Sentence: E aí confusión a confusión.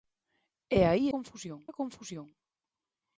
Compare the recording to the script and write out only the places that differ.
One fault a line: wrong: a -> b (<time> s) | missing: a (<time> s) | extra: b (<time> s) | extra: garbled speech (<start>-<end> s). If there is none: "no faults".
no faults